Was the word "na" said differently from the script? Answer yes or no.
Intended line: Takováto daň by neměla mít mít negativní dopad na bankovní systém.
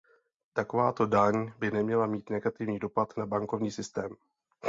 no